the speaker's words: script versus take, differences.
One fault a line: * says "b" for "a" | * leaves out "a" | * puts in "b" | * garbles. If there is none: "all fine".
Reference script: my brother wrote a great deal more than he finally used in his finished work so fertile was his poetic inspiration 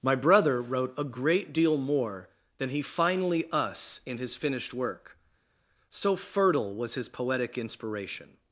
* says "us" for "used"